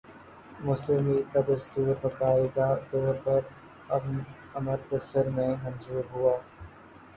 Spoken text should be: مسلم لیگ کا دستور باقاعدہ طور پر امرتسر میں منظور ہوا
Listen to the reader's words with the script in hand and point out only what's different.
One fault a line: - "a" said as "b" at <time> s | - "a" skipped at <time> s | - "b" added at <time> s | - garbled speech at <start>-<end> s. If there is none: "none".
none